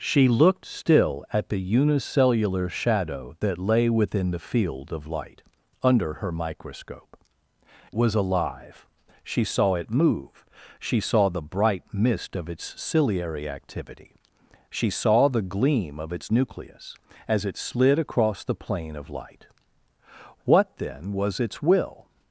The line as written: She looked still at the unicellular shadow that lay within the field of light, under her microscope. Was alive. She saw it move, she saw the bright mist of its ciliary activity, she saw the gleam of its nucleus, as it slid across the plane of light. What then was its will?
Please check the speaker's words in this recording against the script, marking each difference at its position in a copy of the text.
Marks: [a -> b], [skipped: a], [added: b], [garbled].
She looked still at the unicellular shadow that lay within the field of light, under her microscope. Was alive. She saw it move, she saw the bright mist of its ciliary activity, she saw the gleam of its nucleus, as it slid across the plane of light. What then was its will?